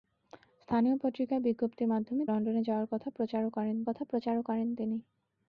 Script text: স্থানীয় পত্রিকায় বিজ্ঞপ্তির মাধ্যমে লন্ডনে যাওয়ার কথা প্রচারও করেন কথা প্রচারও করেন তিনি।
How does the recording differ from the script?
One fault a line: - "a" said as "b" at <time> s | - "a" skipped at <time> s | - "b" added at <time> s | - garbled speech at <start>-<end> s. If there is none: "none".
none